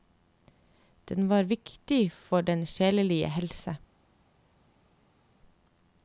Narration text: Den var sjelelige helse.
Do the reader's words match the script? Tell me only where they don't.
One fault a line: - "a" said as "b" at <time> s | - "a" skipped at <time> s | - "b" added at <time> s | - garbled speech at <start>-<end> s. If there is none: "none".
- "viktig for den" added at 1.4 s